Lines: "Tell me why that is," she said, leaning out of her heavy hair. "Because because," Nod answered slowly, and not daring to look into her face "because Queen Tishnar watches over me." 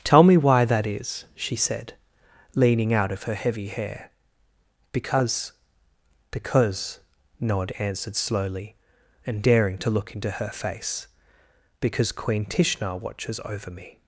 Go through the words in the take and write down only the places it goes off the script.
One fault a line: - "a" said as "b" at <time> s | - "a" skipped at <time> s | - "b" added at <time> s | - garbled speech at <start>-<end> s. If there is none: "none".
- "not" skipped at 9.4 s